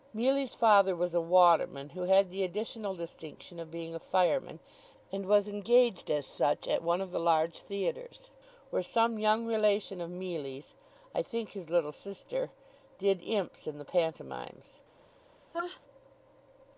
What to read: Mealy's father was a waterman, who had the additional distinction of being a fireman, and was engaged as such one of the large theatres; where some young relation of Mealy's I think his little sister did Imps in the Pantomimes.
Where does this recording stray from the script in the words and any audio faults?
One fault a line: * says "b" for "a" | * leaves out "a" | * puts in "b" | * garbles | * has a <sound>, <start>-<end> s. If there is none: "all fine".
* puts in "at"
* has a sneeze, 15.5-15.8 s